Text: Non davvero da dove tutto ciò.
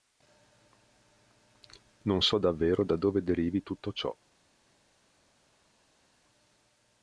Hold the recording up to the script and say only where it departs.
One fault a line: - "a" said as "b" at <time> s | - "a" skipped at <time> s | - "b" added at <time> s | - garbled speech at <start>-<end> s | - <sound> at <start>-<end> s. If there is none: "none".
- "so" added at 2.2 s
- "derivi" added at 3.2 s